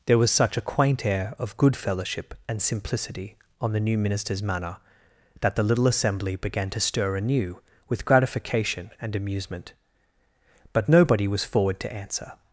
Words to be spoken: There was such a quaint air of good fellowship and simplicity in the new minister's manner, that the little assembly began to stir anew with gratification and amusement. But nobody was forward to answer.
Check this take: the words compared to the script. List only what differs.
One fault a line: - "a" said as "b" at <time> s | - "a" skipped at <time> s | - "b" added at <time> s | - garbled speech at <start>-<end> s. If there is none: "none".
- "in" said as "on" at 3.6 s